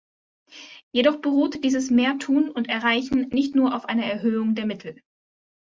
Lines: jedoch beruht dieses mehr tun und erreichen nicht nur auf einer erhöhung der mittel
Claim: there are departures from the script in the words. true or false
false